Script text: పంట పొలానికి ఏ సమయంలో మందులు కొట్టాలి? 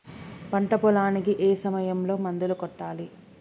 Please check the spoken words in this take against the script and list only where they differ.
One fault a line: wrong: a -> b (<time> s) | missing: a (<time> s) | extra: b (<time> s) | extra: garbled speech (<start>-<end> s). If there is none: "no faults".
no faults